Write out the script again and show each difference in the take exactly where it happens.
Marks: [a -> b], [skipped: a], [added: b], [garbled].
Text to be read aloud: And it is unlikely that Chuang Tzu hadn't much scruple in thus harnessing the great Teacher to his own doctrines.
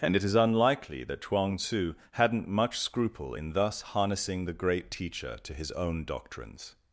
And it is unlikely that Chuang Tzu hadn't much scruple in thus harnessing the great Teacher to his own doctrines.